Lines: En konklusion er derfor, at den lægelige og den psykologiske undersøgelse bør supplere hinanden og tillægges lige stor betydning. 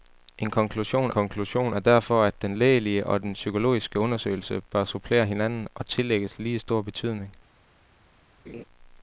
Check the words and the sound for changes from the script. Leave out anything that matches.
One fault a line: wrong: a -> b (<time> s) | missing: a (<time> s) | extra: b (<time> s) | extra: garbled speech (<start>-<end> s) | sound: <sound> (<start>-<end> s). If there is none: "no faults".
extra: konklusion (1.1 s)
sound: laugh (8.5-8.6 s)